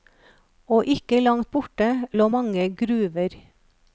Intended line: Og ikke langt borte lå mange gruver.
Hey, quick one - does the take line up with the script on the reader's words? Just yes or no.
yes